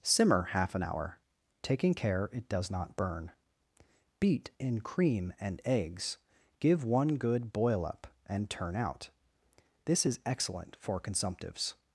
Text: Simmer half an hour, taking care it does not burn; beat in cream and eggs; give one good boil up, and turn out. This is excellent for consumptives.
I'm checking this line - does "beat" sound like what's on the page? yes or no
yes